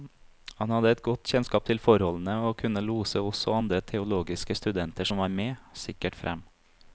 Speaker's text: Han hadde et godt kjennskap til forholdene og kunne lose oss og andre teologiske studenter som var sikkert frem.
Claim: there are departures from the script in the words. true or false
true